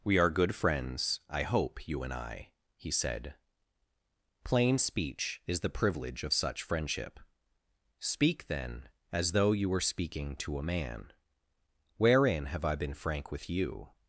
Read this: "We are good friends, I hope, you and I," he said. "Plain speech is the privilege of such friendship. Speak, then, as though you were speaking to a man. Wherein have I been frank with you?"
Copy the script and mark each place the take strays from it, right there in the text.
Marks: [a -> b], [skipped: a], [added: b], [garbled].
"We are good friends, I hope, you and I," he said. "Plain speech is the privilege of such friendship. Speak, then, as though you were speaking to a man. Wherein have I been frank with you?"